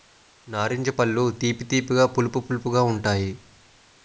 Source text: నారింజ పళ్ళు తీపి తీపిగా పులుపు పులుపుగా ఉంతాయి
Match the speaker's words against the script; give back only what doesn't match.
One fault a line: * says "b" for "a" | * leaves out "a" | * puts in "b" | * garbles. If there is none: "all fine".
all fine